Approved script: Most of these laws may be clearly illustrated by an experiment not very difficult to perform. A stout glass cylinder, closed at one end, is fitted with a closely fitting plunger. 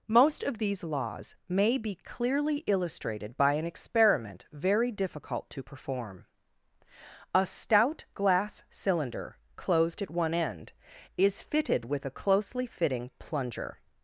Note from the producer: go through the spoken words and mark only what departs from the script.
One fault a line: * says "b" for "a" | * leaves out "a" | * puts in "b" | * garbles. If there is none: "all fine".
* leaves out "not"